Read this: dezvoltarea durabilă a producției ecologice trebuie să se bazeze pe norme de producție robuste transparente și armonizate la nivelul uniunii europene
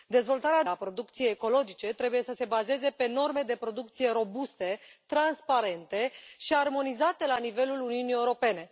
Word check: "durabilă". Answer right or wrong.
wrong